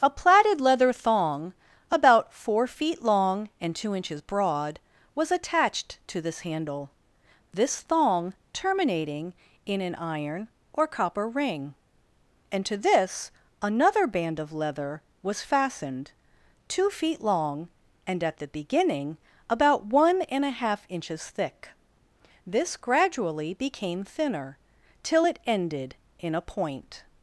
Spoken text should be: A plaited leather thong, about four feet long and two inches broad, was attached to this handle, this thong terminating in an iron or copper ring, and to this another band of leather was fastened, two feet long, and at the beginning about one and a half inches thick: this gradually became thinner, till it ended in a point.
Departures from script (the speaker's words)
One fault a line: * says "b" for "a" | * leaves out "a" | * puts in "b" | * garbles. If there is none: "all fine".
all fine